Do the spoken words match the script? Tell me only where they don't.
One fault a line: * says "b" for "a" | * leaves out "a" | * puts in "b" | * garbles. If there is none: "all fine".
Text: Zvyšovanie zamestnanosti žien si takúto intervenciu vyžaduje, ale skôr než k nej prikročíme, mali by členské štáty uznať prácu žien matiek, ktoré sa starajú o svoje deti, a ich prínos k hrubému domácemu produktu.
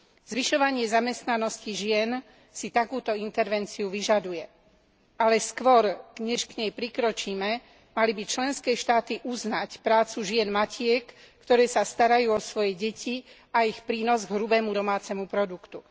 all fine